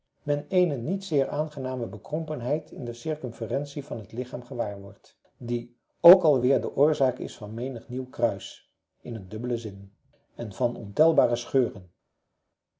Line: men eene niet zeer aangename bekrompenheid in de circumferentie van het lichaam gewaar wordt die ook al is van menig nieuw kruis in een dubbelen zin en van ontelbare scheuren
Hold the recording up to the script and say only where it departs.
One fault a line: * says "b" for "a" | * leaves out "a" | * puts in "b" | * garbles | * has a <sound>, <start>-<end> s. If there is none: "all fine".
* puts in "weer de oorzaak"